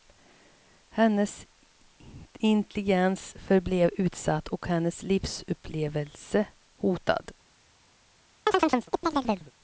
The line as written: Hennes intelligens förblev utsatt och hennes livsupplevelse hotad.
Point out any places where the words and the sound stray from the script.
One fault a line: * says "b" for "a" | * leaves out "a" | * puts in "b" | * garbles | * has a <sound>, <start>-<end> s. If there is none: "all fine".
* has a chirp, 8.5-9.5 s